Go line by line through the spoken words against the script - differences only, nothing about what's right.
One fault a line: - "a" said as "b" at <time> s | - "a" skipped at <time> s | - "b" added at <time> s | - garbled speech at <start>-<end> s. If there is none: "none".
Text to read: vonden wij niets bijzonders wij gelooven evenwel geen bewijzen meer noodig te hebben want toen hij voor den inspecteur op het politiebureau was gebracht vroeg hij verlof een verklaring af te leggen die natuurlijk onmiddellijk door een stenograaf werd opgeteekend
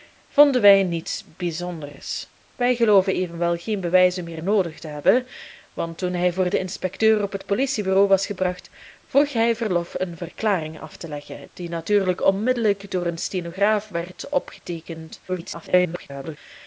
- garbled speech at 15.3-16.4 s